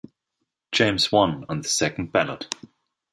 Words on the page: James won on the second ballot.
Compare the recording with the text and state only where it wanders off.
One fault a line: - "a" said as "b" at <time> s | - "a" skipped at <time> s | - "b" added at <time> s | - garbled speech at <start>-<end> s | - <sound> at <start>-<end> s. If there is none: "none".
none